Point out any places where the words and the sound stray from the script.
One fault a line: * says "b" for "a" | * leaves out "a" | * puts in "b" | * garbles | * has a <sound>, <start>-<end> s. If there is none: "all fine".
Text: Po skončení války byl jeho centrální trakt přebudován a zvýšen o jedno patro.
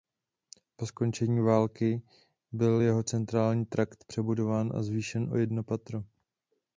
all fine